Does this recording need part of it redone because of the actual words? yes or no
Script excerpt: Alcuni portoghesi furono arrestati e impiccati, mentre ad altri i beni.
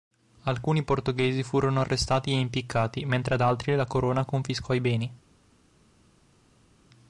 yes